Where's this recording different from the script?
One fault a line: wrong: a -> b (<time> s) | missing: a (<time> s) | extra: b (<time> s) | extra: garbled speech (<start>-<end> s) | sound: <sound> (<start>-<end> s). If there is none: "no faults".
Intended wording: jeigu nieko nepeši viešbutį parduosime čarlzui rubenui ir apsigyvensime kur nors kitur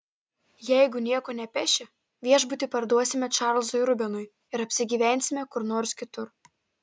no faults